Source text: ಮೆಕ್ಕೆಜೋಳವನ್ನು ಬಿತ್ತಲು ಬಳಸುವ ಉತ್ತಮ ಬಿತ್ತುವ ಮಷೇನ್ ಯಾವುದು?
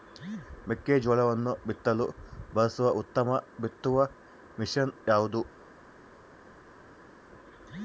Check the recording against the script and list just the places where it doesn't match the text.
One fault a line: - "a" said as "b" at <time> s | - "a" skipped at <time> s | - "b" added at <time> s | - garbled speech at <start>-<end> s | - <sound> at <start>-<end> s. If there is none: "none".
none